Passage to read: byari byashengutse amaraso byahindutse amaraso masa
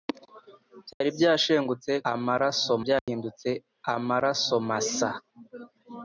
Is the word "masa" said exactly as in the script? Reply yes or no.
yes